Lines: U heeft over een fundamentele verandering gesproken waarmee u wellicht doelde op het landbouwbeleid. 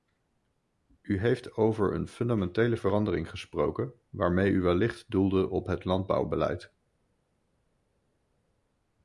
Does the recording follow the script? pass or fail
pass